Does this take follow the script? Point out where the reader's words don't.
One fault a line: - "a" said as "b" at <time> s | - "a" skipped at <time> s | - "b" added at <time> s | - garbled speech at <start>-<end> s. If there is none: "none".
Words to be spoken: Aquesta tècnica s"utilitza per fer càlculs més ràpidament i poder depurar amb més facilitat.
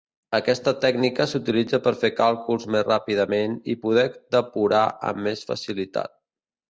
none